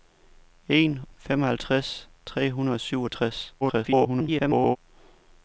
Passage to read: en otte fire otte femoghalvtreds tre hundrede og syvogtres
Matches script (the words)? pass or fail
fail